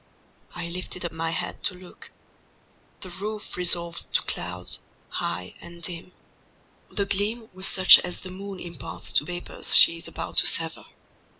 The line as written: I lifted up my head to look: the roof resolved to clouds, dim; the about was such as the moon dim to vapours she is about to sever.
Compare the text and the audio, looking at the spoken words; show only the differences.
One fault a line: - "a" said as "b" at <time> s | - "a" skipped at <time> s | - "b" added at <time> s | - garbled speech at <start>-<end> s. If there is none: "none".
- "high and" added at 5.1 s
- "about" said as "gleam" at 7.0 s
- "dim" said as "imparts" at 8.6 s